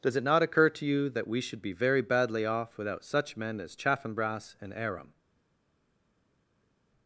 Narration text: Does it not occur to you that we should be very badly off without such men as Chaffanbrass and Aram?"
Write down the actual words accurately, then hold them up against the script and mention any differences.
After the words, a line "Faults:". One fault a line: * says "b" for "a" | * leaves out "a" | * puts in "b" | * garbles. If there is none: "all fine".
Does it not occur to you that we should be very badly off without such men as Chaffanbrass and Aram?"
Faults:
all fine